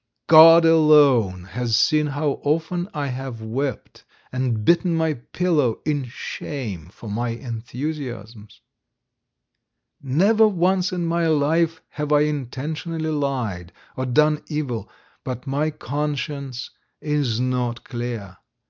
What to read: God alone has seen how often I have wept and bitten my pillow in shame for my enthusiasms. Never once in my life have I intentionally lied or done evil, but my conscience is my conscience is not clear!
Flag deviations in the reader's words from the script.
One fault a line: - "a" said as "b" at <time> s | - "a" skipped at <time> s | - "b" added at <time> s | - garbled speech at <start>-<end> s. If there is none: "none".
- "my conscience is" skipped at 17.4 s